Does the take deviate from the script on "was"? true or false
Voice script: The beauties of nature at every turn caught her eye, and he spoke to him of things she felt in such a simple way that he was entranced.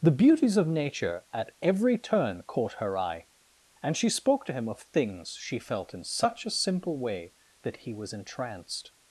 false